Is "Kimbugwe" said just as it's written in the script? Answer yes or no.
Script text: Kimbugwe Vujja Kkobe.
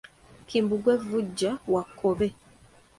yes